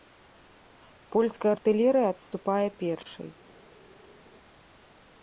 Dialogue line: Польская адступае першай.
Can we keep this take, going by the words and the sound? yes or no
no